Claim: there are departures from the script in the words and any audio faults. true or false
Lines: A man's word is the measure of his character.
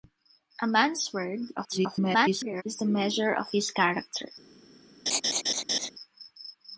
true